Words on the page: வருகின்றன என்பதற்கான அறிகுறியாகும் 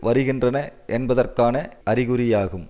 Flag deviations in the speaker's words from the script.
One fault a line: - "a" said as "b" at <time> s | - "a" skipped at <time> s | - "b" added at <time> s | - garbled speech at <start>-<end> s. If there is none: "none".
none